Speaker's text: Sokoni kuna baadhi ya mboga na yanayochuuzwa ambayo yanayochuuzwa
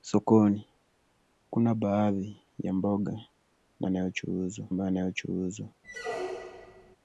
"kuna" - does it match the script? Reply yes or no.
yes